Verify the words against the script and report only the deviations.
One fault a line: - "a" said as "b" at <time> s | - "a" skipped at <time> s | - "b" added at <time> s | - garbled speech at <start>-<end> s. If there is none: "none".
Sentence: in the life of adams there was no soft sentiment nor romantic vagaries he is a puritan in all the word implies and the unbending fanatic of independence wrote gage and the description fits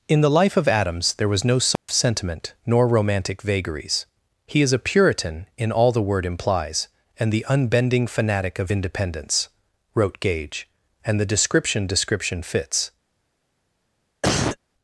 - "description" added at 11.8 s